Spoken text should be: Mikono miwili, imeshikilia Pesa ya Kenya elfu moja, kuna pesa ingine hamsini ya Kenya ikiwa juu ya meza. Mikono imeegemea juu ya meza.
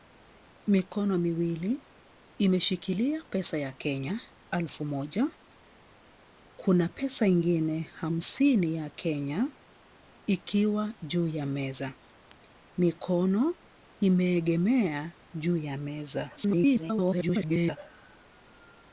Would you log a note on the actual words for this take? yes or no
yes